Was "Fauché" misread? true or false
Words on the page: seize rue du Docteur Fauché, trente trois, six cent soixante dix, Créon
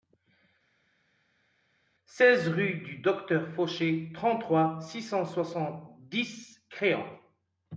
false